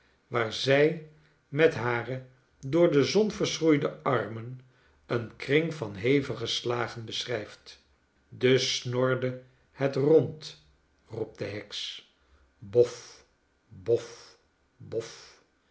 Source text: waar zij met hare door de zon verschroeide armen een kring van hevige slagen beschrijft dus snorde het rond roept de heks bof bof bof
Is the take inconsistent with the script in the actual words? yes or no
no